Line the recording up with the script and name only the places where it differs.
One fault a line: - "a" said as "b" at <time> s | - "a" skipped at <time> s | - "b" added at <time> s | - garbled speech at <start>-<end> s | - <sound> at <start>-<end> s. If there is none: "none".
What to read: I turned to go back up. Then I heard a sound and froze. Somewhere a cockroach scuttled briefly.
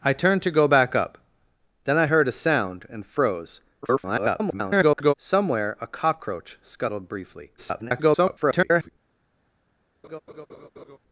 - garbled speech at 3.8-5.1 s
- garbled speech at 7.6-8.9 s
- laugh at 10.0-11.0 s